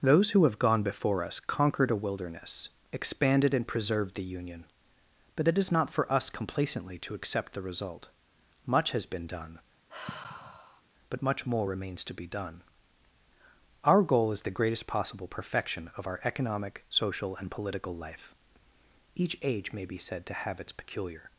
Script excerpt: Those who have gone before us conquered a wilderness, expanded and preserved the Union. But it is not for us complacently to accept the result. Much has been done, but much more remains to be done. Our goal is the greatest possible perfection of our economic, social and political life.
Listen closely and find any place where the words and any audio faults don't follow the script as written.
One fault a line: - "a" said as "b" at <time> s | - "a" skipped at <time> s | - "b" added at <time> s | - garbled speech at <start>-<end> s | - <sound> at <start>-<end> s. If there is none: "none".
- sigh at 9.9-10.8 s
- "Each age may be said to have its peculiar" added at 19.1 s